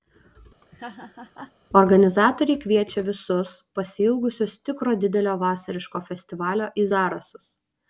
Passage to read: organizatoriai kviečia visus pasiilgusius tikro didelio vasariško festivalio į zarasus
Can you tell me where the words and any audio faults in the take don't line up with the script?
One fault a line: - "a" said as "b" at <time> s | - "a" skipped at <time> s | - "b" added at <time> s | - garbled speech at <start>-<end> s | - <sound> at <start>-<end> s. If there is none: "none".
- laugh at 0.6-1.5 s